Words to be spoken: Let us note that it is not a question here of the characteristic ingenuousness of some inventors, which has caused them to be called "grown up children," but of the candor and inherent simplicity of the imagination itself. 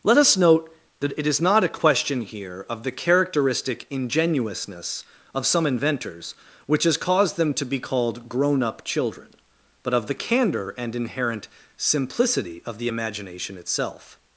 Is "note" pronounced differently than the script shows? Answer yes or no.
no